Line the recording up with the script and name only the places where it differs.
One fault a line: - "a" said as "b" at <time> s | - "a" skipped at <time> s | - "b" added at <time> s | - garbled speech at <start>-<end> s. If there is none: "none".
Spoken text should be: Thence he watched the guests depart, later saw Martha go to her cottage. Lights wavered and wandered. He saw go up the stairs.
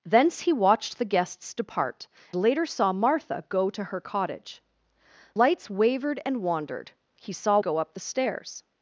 none